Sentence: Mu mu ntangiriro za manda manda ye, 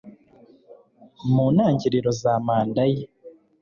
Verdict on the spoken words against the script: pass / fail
fail